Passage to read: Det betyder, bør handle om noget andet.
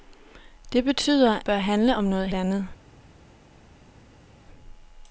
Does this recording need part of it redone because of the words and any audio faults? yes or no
no